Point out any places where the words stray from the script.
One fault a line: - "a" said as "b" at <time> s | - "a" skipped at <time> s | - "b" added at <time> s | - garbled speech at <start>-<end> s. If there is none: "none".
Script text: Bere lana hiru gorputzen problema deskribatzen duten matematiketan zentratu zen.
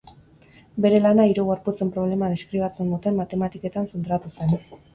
none